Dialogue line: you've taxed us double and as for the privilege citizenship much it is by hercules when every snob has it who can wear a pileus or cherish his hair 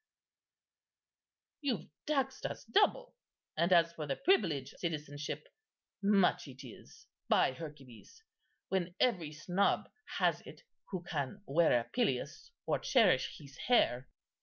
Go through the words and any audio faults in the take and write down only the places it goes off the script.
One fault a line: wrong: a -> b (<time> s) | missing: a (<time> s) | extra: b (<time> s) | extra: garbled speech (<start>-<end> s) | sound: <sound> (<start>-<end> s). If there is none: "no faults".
no faults